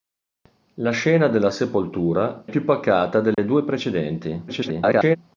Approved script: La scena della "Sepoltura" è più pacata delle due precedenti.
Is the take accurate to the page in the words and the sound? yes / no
no